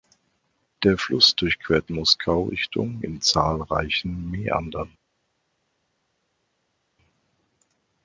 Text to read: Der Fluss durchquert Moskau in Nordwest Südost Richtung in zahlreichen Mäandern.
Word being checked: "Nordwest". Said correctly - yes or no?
no